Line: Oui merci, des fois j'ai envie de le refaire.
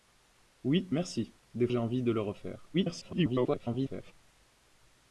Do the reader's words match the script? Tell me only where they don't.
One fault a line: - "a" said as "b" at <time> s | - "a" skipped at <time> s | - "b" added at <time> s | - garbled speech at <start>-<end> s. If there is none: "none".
- "fois" skipped at 1.7 s
- garbled speech at 2.7-4.1 s